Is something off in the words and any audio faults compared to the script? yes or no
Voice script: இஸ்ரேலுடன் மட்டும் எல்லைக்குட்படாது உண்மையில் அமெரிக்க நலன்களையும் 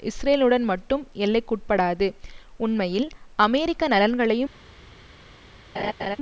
yes